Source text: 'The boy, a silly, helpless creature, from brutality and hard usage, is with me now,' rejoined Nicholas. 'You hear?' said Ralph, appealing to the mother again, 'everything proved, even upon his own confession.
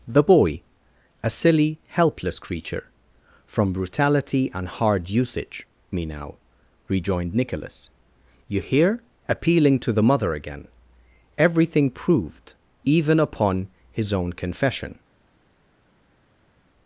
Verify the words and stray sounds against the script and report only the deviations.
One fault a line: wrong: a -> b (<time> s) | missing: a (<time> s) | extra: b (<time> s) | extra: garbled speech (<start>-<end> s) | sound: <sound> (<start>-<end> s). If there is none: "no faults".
missing: is with (5.7 s)
missing: said Ralph (9.0 s)